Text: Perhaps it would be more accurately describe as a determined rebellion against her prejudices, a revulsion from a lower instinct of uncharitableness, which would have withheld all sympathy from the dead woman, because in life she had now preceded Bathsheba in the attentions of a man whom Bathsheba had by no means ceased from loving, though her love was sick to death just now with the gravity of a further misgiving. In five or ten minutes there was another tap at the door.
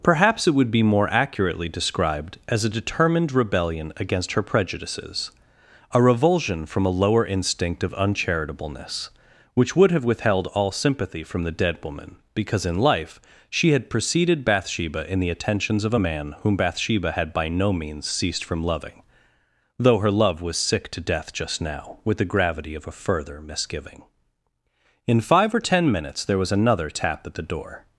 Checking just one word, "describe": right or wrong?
wrong